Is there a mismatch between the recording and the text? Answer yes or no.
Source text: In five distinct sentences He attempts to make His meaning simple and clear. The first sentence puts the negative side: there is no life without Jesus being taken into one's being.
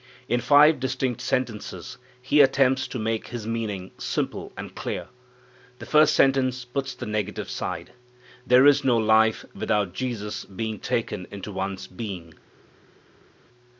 no